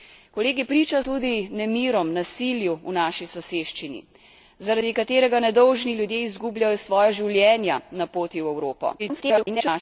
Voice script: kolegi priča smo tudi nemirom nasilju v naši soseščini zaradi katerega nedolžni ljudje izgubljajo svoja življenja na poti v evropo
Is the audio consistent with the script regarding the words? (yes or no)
no